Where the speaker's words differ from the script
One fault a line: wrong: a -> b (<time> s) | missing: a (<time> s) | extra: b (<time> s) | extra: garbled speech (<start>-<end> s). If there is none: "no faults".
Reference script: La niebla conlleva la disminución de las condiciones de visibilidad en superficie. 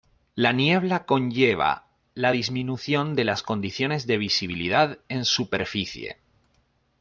no faults